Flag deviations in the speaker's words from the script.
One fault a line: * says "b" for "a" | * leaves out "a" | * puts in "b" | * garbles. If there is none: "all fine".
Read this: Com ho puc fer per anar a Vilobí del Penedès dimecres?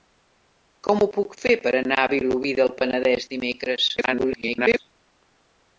* garbles